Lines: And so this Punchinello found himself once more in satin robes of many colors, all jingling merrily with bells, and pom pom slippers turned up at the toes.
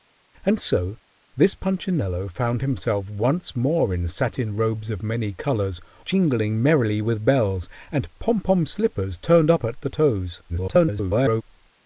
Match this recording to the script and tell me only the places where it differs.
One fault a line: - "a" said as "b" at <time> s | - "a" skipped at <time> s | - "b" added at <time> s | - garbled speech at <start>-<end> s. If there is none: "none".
- "all" skipped at 5.8 s
- garbled speech at 10.5-11.4 s